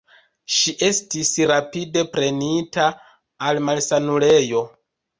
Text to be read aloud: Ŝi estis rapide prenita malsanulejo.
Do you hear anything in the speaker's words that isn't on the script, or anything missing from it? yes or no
yes